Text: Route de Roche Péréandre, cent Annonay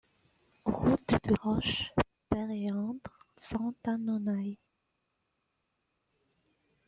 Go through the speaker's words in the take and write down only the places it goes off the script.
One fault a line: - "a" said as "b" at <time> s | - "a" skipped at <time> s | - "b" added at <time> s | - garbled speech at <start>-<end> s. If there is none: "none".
none